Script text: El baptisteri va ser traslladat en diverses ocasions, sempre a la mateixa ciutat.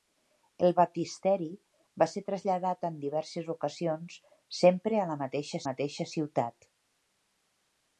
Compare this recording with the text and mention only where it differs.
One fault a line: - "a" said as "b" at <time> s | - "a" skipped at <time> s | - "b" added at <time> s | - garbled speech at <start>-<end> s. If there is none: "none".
- "mateixa" added at 5.7 s